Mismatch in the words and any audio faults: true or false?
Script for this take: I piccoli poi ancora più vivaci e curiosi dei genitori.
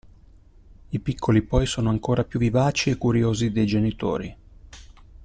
true